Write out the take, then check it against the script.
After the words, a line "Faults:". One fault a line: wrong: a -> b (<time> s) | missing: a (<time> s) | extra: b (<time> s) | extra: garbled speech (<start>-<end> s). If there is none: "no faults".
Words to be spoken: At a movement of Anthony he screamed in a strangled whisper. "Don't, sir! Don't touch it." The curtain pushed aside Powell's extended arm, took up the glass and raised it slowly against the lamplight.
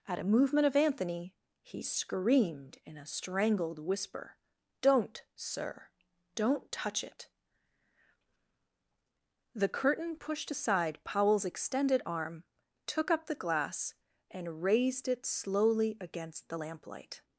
At a movement of Anthony he screamed in a strangled whisper. "Don't, sir! Don't touch it." The curtain pushed aside Powell's extended arm, took up the glass and raised it slowly against the lamplight.
Faults:
no faults